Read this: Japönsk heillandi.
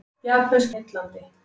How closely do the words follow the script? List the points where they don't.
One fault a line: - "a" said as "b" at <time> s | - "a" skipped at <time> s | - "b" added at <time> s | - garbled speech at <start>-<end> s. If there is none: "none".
none